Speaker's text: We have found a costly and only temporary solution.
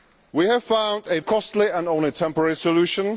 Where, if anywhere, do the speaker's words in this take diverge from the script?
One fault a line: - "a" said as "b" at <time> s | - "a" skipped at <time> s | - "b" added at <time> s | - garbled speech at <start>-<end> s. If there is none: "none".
none